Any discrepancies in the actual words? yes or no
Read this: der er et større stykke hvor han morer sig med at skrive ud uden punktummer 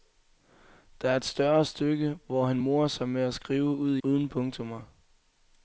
no